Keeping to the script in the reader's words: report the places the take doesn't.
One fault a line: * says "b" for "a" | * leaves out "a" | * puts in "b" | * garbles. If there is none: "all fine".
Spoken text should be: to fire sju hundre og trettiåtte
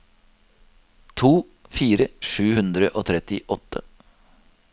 all fine